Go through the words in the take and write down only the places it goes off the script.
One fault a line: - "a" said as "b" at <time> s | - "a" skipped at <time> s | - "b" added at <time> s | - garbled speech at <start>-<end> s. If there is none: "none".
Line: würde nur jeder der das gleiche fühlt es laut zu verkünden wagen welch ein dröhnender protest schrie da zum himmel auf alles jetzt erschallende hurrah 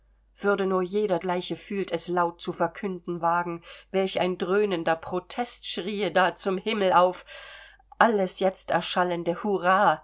- "der das" skipped at 1.2 s